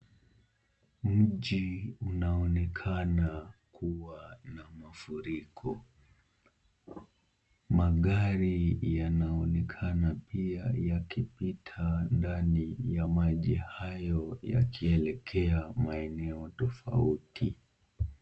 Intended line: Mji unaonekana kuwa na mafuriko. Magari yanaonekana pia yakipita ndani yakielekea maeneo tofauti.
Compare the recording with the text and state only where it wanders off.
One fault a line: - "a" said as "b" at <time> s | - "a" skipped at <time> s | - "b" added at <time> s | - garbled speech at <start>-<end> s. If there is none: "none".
- "ya maji hayo" added at 12.8 s